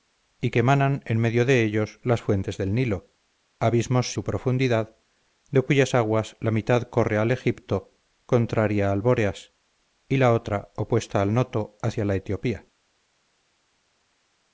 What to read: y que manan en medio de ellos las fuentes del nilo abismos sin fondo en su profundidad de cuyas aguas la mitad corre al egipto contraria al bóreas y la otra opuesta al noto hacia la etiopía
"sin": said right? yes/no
no